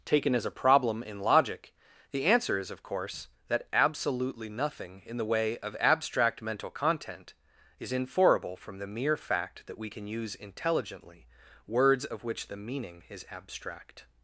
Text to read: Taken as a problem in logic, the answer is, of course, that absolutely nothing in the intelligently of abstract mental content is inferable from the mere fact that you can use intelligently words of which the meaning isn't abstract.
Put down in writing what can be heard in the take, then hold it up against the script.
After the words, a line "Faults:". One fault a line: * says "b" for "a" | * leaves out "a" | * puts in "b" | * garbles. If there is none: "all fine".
Taken as a problem in logic, the answer is, of course, that absolutely nothing in the way of abstract mental content is inferable from the mere fact that we can use intelligently words of which the meaning is abstract.
Faults:
* says "way" for "intelligently"
* says "we" for "you"
* says "is" for "isn't"